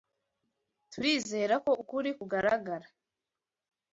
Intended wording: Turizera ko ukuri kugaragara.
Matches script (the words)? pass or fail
pass